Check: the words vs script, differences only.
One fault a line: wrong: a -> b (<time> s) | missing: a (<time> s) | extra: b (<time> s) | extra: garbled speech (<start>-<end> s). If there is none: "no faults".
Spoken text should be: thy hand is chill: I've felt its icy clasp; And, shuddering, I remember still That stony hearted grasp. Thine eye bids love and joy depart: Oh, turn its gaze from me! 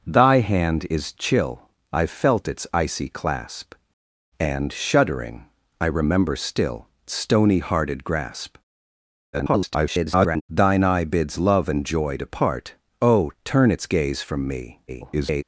missing: That (6.9 s)
extra: garbled speech (9.3-10.4 s)
extra: garbled speech (14.9-15.4 s)